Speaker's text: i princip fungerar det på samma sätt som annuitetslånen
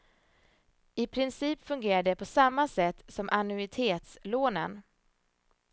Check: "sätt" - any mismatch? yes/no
no